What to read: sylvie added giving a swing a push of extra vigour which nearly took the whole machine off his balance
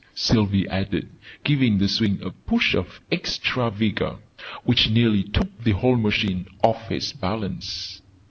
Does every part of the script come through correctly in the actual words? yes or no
no